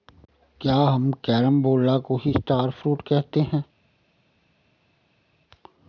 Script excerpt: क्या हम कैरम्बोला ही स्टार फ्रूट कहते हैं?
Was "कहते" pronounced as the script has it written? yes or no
yes